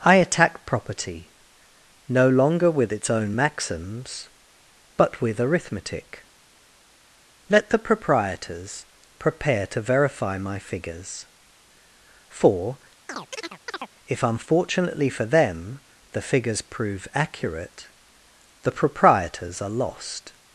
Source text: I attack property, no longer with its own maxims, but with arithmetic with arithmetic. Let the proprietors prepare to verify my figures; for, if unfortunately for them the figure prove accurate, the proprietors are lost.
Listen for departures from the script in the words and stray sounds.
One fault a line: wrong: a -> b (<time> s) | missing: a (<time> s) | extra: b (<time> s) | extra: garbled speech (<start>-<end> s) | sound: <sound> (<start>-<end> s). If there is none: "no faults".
missing: with arithmetic (6.2 s)
sound: chirp (13.1-13.9 s)
wrong: figure -> figures (16.2 s)